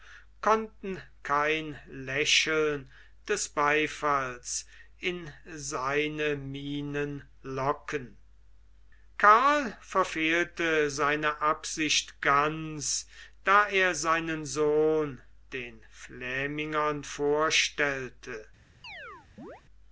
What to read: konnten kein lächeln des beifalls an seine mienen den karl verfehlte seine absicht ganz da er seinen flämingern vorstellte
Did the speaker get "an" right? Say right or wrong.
wrong